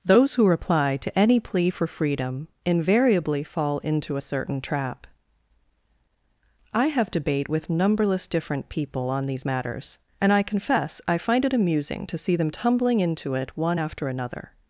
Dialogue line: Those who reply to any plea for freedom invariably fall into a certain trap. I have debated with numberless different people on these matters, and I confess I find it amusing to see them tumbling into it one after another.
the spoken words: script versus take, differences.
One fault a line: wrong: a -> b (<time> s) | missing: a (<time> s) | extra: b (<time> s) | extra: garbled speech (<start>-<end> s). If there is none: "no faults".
wrong: debated -> debate (7.1 s)